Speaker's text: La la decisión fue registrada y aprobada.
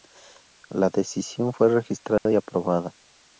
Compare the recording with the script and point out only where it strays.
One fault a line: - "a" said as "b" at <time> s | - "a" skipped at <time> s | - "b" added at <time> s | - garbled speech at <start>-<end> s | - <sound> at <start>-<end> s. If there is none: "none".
- "la" skipped at 0.9 s
- dropout at 2.2-2.3 s